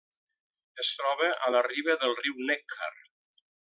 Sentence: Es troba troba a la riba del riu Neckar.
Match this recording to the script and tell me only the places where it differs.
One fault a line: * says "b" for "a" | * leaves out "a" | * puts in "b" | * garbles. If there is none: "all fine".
* leaves out "troba"